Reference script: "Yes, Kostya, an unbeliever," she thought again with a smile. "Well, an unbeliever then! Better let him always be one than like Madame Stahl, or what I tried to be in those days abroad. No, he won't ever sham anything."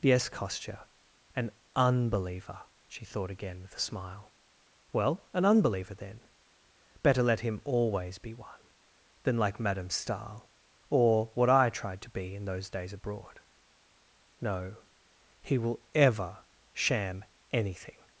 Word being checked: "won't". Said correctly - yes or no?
no